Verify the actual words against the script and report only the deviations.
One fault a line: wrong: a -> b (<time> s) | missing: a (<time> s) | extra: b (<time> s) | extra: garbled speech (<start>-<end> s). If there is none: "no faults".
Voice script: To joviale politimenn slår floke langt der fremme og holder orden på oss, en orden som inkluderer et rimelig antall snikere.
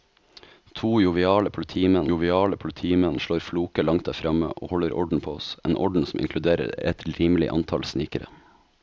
extra: joviale politimenn (2.1 s)